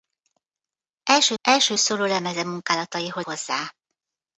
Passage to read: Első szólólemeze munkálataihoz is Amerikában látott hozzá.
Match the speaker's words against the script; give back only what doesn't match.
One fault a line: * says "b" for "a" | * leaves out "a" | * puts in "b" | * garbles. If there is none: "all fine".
* puts in "első"
* leaves out "is Amerikában látott"